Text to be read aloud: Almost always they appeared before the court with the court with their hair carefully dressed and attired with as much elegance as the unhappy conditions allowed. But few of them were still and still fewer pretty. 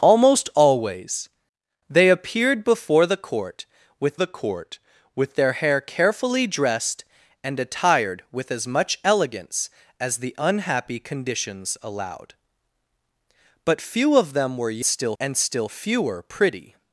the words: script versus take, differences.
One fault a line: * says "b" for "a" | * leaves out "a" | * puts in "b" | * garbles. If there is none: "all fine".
all fine